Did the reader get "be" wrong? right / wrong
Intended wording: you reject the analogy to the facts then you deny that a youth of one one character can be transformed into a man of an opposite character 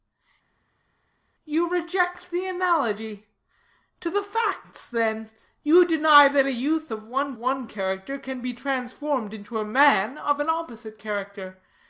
right